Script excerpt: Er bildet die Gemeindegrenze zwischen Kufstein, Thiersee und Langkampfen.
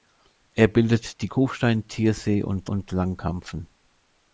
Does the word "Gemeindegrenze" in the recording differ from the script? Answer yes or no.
yes